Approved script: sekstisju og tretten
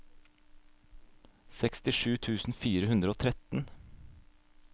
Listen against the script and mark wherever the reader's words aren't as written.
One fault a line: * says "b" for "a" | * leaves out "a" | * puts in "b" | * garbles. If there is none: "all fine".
* puts in "tusen fire hundre"